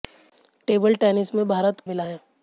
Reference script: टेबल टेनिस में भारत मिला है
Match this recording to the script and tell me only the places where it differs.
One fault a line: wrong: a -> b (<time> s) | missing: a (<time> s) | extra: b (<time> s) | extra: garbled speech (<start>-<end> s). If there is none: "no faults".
no faults